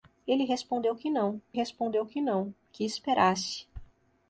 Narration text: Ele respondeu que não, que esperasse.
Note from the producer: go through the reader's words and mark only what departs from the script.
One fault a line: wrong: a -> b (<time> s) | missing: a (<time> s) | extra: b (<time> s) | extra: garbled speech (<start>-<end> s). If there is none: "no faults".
extra: respondeu que não (1.5 s)